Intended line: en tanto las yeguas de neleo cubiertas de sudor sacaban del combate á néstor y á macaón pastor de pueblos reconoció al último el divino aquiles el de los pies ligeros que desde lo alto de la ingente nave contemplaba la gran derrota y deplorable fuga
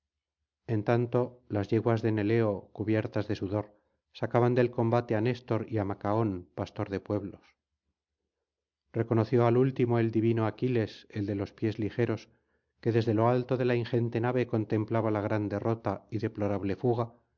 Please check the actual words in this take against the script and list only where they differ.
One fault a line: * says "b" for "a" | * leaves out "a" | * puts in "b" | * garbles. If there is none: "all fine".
all fine